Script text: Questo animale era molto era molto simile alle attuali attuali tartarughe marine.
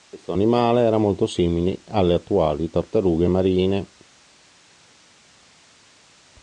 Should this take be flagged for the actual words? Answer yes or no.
yes